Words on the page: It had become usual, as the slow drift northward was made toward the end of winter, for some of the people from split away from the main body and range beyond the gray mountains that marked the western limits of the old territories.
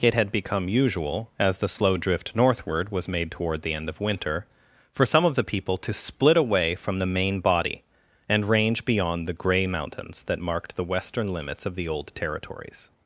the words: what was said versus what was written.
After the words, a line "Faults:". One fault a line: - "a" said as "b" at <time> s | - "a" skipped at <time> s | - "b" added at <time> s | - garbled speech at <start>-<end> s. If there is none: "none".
It had become usual, as the slow drift northward was made toward the end of winter, for some of the people to split away from the main body and range beyond the gray mountains that marked the western limits of the old territories.
Faults:
- "from" said as "to" at 5.8 s